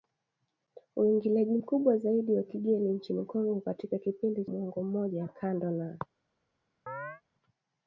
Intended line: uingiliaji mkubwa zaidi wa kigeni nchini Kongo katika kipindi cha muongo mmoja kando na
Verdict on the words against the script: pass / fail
fail